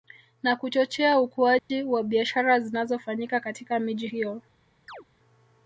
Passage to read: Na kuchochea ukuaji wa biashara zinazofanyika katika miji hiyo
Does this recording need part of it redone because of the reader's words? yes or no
no